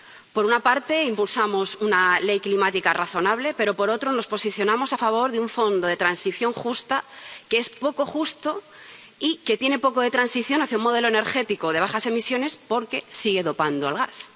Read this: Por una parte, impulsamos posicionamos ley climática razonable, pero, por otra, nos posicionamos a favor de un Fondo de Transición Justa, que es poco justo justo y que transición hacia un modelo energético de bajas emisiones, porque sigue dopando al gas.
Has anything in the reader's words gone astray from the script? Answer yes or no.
yes